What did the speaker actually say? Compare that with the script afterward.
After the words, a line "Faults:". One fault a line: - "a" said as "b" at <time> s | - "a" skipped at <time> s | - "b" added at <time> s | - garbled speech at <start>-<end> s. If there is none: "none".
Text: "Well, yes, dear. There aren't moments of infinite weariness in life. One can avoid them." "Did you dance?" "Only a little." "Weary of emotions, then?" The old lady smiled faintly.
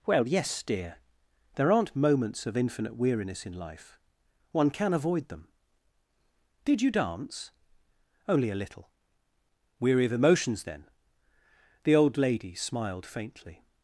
"Well, yes, dear. There aren't moments of infinite weariness in life. One can avoid them." "Did you dance?" "Only a little." "Weary of emotions, then?" The old lady smiled faintly.
Faults:
none